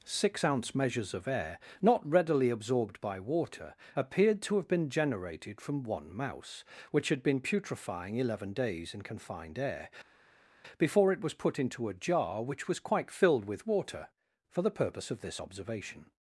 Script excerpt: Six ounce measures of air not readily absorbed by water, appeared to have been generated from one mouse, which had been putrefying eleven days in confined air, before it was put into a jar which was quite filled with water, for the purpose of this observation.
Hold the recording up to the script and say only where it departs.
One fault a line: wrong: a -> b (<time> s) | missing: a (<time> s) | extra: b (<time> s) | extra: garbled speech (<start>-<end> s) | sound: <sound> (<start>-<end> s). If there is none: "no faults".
no faults